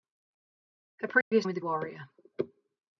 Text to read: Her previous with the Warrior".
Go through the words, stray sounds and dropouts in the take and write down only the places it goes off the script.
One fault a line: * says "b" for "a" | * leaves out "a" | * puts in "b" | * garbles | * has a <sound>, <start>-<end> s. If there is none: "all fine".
* has a dropout, 1.2-1.3 s